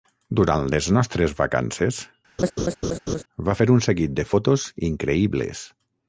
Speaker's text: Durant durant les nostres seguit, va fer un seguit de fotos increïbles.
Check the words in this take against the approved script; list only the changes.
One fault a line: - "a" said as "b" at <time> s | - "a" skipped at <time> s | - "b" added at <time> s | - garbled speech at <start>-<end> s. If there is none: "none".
- "durant" skipped at 0.6 s
- "seguit" said as "vacances" at 1.4 s